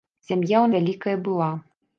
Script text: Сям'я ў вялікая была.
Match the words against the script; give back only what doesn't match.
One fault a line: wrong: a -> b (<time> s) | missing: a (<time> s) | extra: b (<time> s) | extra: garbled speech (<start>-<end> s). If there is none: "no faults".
no faults